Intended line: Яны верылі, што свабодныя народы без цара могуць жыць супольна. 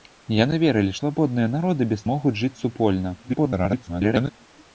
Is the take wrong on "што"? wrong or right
wrong